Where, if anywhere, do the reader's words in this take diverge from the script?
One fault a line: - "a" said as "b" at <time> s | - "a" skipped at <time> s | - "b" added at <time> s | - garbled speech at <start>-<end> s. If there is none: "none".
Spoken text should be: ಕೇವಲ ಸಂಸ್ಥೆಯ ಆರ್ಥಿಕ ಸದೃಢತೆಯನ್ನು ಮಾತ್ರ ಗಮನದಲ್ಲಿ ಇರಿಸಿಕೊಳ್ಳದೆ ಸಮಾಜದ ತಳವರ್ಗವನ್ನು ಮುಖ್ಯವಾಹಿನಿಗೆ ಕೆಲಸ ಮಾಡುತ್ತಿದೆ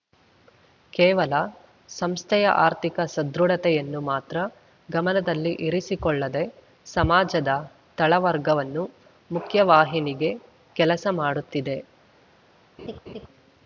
none